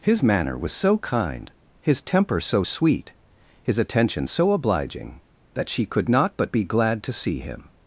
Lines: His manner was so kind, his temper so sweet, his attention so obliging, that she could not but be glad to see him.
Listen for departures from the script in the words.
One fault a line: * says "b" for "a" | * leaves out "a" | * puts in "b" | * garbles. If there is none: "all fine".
all fine